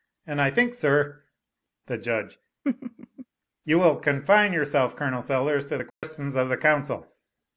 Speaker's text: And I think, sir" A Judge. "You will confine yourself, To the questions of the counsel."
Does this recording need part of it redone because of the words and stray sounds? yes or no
yes